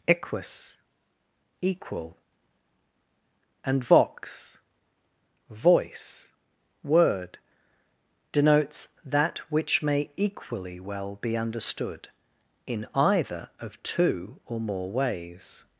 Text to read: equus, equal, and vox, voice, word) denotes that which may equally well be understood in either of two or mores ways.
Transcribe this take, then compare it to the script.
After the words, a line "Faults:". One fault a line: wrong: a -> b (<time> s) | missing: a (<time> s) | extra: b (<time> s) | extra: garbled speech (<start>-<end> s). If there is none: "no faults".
equus, equal, and vox, voice, word) denotes that which may equally well be understood in either of two or more ways.
Faults:
wrong: mores -> more (14.6 s)